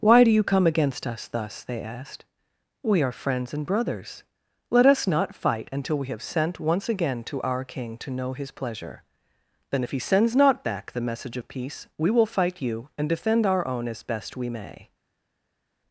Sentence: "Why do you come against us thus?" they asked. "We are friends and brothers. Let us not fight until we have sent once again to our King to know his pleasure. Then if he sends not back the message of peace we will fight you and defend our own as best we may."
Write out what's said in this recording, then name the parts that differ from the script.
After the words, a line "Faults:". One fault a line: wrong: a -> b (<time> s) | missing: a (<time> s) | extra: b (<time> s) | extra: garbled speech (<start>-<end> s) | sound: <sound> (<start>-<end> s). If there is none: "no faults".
"Why do you come against us thus?" they asked. "We are friends and brothers. Let us not fight until we have sent once again to our King to know his pleasure. Then if he sends not back the message of peace we will fight you and defend our own as best we may."
Faults:
no faults